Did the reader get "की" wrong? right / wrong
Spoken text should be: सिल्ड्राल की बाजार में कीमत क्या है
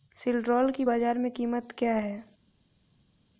right